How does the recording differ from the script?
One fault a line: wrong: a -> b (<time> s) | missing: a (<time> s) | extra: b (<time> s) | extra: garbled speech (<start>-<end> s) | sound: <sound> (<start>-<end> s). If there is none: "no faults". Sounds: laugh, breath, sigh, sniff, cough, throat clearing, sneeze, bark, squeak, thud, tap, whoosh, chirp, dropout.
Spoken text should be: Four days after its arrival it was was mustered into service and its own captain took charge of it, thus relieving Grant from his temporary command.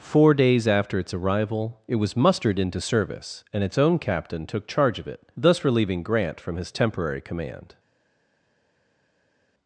missing: was (2.2 s)